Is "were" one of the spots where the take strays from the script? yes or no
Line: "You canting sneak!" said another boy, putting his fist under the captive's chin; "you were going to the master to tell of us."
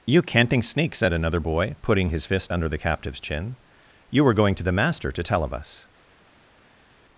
no